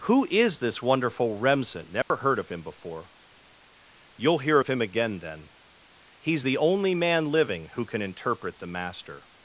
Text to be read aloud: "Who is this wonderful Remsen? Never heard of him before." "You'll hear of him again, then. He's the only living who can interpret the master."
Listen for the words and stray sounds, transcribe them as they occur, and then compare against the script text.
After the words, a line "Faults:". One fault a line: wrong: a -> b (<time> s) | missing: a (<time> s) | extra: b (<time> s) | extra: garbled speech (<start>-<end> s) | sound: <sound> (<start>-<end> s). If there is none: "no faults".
"Who is this wonderful Remsen? Never heard of him before." "You'll hear of him again, then. He's the only man living who can interpret the master."
Faults:
sound: dropout (2.0-2.1 s)
extra: man (6.9 s)